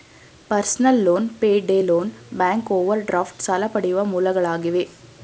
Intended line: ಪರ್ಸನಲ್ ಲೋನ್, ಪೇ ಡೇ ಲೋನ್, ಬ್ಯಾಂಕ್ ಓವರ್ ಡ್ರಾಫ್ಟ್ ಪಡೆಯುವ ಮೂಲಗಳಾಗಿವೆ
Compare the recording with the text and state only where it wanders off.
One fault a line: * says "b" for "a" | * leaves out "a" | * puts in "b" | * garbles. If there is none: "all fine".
* puts in "ಸಾಲ"